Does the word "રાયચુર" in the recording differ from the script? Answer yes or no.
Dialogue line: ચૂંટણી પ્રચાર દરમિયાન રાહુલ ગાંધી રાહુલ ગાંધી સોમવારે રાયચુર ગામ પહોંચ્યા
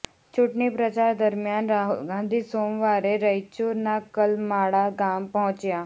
yes